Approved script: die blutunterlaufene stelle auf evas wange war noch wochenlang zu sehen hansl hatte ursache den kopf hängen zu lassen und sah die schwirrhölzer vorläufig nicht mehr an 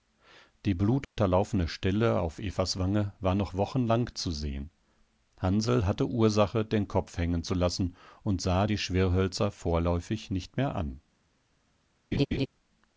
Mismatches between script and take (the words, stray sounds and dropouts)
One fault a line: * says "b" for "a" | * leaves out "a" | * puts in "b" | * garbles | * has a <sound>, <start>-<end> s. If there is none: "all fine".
* has a dropout, 1.0-1.2 s
* has a laugh, 12.1-12.5 s